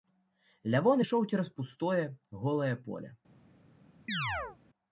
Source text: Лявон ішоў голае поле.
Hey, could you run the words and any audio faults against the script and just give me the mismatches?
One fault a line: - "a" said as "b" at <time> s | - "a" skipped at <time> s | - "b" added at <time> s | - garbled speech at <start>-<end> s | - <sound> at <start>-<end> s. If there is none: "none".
- "цераз пустое" added at 1.3 s
- chirp at 4.1-4.6 s